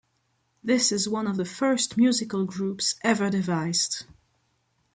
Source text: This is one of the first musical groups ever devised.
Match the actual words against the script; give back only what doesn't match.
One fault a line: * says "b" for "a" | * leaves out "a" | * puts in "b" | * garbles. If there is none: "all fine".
all fine